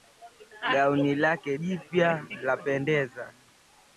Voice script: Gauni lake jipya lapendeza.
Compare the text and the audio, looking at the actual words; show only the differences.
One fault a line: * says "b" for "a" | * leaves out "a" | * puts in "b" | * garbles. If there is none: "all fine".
all fine